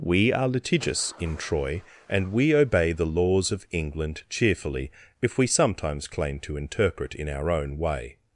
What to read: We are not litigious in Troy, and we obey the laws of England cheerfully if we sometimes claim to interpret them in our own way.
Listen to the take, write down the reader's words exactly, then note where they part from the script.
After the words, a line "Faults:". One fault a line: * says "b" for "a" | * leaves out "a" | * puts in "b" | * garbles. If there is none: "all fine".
We are litigious in Troy, and we obey the laws of England cheerfully if we sometimes claim to interpret in our own way.
Faults:
* leaves out "not"
* leaves out "them"